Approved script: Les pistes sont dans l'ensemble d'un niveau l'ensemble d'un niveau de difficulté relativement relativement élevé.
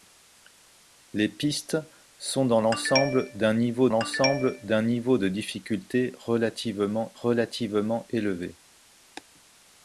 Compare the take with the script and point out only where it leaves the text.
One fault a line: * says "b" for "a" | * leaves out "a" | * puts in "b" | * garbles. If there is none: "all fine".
all fine